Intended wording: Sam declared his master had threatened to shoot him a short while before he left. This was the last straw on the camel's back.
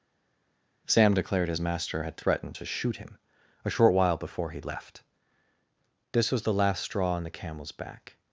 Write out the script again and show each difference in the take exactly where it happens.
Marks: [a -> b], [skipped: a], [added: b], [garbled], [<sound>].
Sam declared his master had threatened to shoot him a short while before he left. This was the last straw on the camel's back.